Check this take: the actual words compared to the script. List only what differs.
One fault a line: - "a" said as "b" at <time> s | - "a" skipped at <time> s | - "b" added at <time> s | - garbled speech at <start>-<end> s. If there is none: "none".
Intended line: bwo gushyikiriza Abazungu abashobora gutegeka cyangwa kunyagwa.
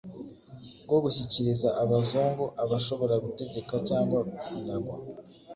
none